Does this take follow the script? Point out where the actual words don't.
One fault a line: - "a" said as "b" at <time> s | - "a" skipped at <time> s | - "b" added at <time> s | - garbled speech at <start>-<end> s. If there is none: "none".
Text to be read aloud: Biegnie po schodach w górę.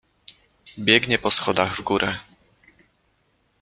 none